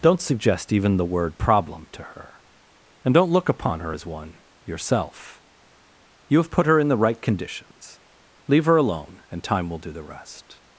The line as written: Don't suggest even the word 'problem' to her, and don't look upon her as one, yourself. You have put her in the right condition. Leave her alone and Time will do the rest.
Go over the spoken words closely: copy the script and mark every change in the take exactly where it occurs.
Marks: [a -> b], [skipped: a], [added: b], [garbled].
Don't suggest even the word 'problem' to her, and don't look upon her as one, yourself. You have put her in the right [condition. -> conditions] Leave her alone and Time will do the rest.